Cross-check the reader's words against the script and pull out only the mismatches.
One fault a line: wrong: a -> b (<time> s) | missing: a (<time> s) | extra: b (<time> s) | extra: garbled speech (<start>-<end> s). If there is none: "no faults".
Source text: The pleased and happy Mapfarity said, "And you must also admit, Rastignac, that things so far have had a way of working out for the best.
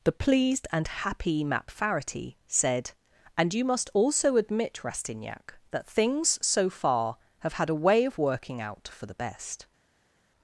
no faults